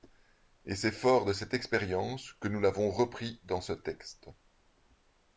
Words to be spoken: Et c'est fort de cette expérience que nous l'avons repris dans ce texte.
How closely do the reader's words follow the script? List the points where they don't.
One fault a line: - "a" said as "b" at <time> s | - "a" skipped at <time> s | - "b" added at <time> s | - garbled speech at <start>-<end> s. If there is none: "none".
none